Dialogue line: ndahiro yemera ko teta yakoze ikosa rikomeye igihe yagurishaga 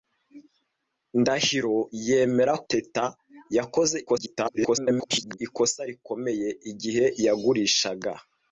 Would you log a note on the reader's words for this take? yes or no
yes